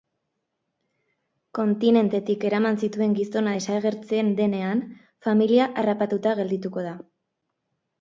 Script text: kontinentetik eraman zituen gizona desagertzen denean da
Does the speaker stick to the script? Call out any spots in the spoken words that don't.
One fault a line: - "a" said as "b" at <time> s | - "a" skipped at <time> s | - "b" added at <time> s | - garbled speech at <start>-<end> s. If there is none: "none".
- "familia harrapatuta geldituko" added at 5.3 s